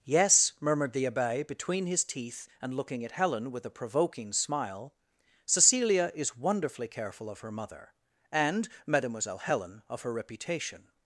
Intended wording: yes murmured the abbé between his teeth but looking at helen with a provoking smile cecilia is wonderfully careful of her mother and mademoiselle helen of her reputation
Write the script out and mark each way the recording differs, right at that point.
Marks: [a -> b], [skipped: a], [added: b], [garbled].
yes murmured the abbé between his teeth [but -> and] looking at helen with a provoking smile cecilia is wonderfully careful of her mother and mademoiselle helen of her reputation